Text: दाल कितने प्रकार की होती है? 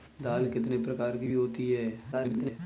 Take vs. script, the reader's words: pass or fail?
fail